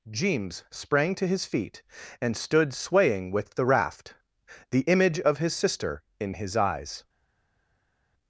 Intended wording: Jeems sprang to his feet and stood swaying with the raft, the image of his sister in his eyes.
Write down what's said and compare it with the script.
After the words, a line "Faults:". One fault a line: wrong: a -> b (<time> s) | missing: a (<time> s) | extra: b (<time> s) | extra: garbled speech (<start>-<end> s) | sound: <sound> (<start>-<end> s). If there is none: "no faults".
Jeems sprang to his feet and stood swaying with the raft, the image of his sister in his eyes.
Faults:
no faults